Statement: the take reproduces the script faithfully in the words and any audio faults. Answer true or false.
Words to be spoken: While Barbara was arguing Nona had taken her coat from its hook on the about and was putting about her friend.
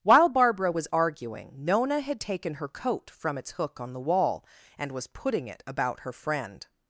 false